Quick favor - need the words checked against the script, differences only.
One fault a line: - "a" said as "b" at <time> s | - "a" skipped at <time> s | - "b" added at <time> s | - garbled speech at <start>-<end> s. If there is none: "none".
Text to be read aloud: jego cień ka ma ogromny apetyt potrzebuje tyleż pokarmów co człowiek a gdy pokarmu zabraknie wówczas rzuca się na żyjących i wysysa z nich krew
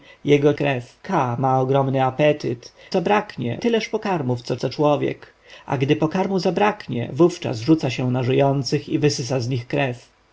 - "cień" said as "krew" at 0.5 s
- "potrzebuje" said as "zabraknie" at 2.9 s
- "co" added at 4.5 s